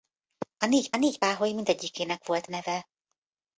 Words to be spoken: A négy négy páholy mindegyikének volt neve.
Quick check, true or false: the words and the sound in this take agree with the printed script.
true